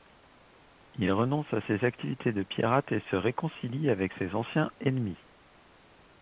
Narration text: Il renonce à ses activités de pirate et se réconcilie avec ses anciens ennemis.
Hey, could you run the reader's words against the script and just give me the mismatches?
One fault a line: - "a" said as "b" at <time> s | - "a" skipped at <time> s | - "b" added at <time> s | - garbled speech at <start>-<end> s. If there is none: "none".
none